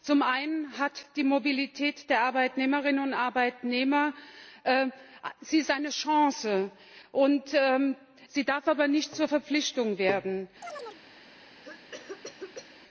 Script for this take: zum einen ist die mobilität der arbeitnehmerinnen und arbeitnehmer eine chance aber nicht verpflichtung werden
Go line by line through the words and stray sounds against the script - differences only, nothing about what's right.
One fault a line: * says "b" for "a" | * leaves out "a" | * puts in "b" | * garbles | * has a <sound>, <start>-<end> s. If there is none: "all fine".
* puts in "sie darf"
* puts in "zur"
* has a chirp, 10.6-11.0 s
* has a cough, 11.6-12.7 s